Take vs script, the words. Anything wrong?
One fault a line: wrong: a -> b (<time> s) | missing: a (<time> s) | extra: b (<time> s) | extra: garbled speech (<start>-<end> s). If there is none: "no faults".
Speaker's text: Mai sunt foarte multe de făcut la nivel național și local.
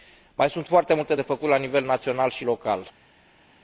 no faults